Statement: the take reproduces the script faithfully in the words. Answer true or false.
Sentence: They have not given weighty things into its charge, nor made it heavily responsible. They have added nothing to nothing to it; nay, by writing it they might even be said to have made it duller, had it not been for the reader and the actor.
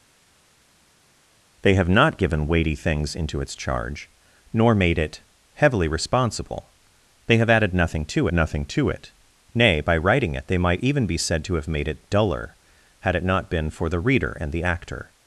true